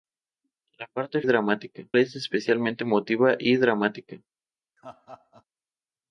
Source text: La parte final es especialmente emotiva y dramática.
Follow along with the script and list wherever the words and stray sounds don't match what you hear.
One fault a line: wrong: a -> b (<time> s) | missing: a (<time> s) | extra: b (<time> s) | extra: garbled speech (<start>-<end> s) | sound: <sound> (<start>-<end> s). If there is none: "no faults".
wrong: final -> dramática (1.2 s)
sound: laugh (4.8-5.4 s)